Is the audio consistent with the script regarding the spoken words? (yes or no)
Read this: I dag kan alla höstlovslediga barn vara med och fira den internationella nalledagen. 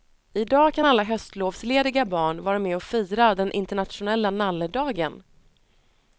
yes